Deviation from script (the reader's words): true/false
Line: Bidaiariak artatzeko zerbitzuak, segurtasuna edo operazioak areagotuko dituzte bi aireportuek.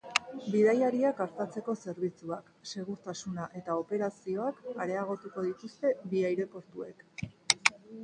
true